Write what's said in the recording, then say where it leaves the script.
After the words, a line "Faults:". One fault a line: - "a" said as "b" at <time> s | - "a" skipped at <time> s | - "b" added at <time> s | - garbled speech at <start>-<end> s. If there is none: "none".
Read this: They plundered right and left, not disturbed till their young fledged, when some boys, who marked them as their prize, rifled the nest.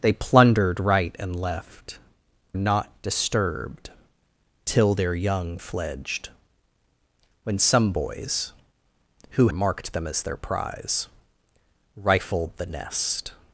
They plundered right and left, not disturbed till their young fledged, when some boys, who marked them as their prize, rifled the nest.
Faults:
none